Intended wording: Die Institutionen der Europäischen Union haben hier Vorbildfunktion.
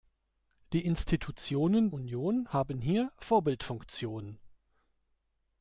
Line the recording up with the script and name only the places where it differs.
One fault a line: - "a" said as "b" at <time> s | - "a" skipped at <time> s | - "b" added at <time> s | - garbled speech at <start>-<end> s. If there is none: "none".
- "der Europäischen" skipped at 1.9 s